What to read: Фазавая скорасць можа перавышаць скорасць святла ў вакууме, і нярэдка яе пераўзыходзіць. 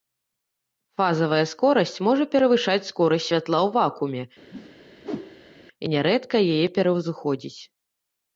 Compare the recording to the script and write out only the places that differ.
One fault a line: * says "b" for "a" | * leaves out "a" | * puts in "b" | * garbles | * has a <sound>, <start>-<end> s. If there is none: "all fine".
* has a whoosh, 4.5-5.6 s